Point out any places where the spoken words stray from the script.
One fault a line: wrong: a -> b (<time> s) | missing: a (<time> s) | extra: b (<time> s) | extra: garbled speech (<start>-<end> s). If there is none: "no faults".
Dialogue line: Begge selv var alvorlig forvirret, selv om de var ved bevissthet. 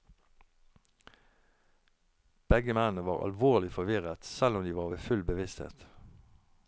wrong: selv -> mennene (2.7 s)
extra: full (5.0 s)